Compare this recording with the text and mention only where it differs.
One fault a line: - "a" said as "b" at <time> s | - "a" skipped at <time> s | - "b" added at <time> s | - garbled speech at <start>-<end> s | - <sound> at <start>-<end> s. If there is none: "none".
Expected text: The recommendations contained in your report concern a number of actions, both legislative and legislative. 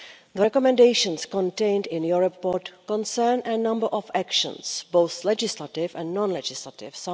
- "non" added at 6.1 s